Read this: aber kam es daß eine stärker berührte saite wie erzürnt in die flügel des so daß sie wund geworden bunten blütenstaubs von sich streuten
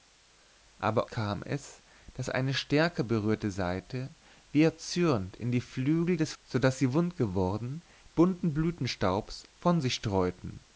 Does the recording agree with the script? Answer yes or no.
yes